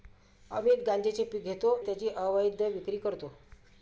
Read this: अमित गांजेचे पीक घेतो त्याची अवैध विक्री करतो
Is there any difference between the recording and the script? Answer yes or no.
no